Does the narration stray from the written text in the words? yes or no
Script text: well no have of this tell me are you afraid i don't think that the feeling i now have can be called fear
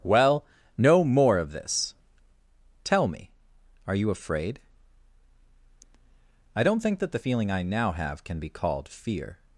yes